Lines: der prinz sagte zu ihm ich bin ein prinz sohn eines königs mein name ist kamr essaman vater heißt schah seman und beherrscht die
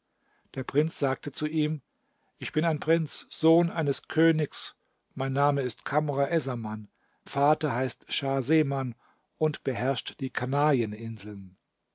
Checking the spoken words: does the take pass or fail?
pass